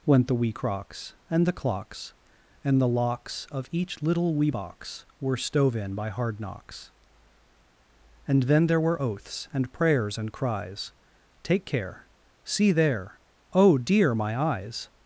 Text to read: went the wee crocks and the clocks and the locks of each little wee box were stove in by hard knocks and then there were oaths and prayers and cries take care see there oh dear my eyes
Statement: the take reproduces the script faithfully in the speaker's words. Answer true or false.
true